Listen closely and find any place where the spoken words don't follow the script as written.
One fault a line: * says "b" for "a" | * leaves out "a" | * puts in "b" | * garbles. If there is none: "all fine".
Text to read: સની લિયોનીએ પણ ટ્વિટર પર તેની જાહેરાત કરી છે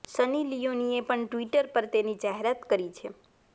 all fine